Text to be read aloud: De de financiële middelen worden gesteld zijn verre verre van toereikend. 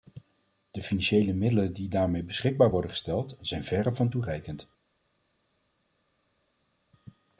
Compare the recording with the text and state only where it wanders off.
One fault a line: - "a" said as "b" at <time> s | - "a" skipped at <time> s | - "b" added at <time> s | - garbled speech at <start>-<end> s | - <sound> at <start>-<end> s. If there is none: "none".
- "de" skipped at 0.8 s
- "die daarmee beschikbaar" added at 1.7 s
- "verre" skipped at 3.9 s